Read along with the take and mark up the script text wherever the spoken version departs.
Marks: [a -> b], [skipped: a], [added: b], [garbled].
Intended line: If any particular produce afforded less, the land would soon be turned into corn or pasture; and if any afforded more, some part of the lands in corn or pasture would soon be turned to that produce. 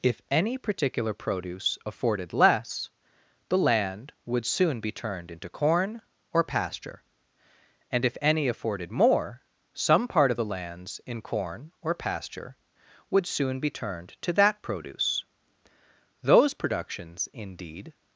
If any particular produce afforded less, the land would soon be turned into corn or pasture; and if any afforded more, some part of the lands in corn or pasture would soon be turned to that produce. [added: Those productions indeed]